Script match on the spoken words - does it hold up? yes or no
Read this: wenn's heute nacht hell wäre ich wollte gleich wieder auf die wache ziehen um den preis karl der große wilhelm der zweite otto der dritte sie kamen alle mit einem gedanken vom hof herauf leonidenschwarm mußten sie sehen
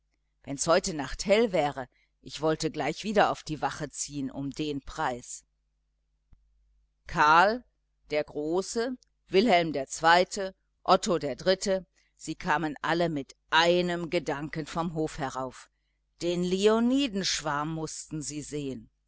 no